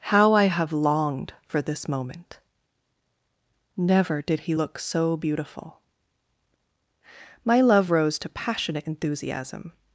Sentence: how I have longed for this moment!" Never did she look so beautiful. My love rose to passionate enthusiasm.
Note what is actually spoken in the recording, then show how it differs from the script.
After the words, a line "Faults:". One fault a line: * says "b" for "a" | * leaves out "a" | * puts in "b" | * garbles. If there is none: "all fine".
how I have longed for this moment!" Never did he look so beautiful. My love rose to passionate enthusiasm.
Faults:
* says "he" for "she"